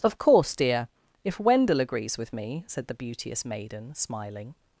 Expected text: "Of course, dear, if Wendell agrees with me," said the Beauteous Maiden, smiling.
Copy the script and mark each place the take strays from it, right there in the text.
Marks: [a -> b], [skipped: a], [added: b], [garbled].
"Of course, dear, if Wendell agrees with me," said the Beauteous Maiden, smiling.